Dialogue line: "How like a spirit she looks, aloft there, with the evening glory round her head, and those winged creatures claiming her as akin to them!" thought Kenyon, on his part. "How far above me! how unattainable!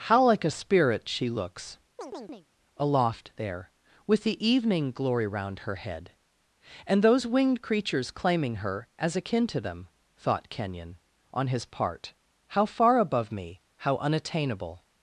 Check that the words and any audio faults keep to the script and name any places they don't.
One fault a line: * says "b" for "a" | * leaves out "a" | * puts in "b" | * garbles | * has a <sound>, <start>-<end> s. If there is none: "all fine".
* has a chirp, 2.0-2.5 s